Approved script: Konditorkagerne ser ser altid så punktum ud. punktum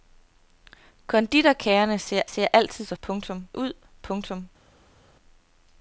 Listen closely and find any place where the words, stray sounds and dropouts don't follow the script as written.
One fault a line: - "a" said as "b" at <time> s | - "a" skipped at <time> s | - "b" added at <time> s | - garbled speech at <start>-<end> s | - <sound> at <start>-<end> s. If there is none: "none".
none